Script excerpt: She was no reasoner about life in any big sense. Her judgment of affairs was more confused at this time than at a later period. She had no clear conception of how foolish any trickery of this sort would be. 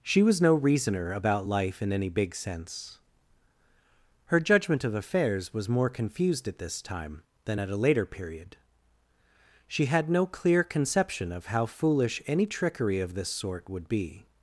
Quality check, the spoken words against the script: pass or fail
pass